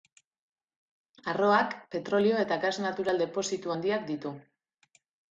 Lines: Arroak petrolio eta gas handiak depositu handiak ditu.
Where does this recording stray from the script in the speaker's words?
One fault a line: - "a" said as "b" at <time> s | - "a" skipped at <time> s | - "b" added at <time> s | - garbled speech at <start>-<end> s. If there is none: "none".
- "handiak" said as "natural" at 2.8 s